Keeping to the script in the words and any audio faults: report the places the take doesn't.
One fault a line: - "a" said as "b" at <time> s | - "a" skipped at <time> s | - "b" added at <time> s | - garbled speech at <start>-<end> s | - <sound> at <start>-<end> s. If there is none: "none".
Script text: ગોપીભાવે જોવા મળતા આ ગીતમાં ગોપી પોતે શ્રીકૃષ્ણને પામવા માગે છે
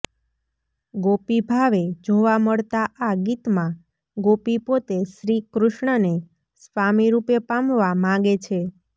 - "સ્વામીરૂપે" added at 6.6 s